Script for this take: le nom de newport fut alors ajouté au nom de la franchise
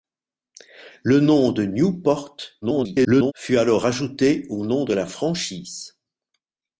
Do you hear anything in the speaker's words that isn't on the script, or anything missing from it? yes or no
yes